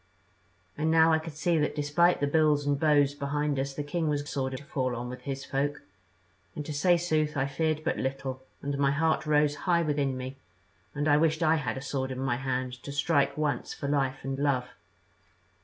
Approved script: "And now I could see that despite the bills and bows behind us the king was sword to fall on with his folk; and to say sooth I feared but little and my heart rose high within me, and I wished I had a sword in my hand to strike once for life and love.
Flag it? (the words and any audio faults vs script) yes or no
no